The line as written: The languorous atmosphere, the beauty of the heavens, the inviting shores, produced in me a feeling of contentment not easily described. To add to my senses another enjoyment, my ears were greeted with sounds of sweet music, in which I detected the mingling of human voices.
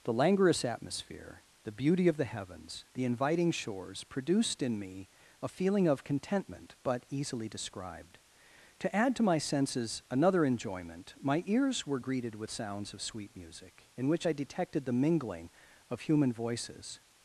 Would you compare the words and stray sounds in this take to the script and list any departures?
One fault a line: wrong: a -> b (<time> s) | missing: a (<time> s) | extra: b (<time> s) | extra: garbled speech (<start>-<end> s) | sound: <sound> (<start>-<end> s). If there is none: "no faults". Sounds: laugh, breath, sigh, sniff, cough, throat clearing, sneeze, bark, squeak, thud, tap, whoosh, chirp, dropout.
wrong: not -> but (6.8 s)